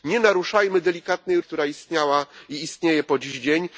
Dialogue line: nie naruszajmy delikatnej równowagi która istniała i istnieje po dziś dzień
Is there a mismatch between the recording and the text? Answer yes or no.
yes